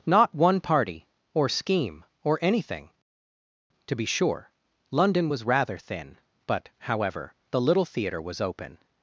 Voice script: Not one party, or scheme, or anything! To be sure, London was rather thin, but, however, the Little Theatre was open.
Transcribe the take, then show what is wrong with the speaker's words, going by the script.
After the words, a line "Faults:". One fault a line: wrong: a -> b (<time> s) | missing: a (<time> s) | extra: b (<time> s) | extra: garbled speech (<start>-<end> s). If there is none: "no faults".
Not one party, or scheme, or anything! To be sure, London was rather thin, but, however, the Little Theatre was open.
Faults:
no faults